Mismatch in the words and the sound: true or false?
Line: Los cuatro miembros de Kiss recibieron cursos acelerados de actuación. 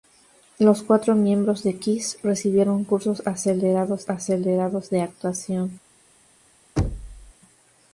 true